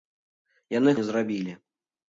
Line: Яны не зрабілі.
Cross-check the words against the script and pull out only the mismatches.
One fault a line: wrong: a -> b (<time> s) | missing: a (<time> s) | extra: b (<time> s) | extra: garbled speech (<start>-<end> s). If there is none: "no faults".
no faults